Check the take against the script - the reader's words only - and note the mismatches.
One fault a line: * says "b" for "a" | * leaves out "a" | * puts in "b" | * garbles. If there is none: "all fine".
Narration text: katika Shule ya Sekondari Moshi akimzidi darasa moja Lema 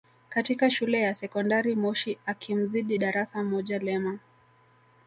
all fine